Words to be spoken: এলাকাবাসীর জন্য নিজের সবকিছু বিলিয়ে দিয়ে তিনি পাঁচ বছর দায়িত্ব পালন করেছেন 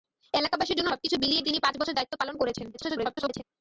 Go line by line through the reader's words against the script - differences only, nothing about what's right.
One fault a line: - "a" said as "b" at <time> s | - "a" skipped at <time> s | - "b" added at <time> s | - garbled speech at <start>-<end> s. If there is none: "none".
- "নিজের" skipped at 0.9 s
- "দিয়ে" skipped at 1.4 s
- garbled speech at 2.7-3.4 s